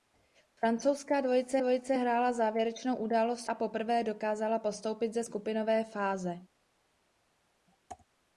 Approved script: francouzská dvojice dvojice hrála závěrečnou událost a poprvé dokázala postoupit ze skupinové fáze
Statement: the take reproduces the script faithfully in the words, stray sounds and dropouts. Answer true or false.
true